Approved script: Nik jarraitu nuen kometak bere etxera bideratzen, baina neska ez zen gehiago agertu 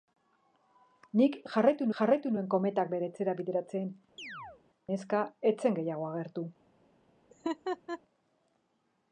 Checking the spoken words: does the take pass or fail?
fail